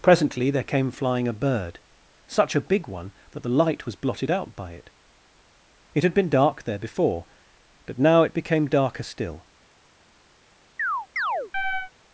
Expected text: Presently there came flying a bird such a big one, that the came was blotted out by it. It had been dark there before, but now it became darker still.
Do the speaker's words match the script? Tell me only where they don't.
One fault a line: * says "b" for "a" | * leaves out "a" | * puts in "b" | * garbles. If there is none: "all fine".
* says "light" for "came"